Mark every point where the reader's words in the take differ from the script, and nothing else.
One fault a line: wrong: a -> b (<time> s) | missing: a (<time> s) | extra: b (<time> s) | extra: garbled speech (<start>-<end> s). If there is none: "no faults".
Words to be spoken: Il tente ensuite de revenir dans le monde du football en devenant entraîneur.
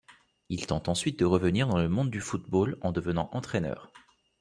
no faults